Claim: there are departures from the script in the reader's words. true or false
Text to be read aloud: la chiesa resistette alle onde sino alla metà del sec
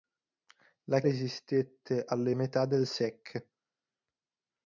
true